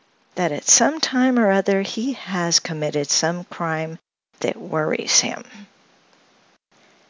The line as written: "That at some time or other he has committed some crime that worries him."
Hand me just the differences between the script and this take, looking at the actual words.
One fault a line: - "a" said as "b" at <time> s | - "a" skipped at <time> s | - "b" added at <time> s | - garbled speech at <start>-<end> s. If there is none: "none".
none